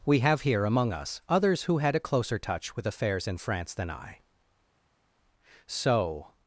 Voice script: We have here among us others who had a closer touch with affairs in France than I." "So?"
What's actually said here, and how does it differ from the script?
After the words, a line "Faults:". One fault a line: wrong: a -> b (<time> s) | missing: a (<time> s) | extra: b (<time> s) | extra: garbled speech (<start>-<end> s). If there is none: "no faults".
We have here among us others who had a closer touch with affairs in France than I." "So?"
Faults:
no faults